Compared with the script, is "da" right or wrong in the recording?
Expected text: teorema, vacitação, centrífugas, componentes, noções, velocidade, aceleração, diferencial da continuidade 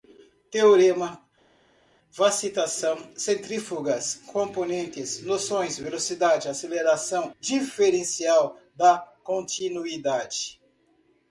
right